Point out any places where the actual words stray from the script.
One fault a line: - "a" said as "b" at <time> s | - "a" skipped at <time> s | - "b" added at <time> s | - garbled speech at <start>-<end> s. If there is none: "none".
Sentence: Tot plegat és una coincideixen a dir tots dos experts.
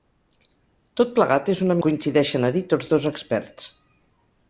none